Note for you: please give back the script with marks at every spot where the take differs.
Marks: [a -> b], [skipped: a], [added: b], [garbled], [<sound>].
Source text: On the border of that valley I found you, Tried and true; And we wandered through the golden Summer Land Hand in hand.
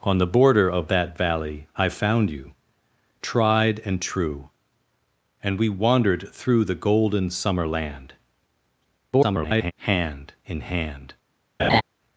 On the border of that valley I found you, Tried and true; And we wandered through the golden Summer Land [garbled] Hand in hand. [laugh]